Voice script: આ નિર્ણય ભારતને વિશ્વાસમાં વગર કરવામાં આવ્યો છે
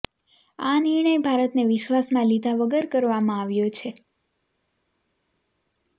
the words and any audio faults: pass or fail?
fail